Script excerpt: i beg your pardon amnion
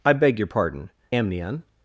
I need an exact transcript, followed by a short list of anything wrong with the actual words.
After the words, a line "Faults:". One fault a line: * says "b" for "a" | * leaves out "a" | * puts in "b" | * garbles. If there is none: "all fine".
i beg your pardon amnion
Faults:
all fine